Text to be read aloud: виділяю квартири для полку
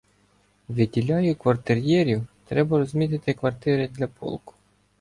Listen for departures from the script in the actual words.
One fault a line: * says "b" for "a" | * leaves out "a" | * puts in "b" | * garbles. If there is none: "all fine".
* puts in "квартир'єрів треба розмітити"